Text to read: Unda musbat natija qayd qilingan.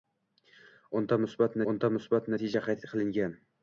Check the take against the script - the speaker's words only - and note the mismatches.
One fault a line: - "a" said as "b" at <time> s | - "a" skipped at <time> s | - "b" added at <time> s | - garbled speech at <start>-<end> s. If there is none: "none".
- "unda musbat" added at 1.7 s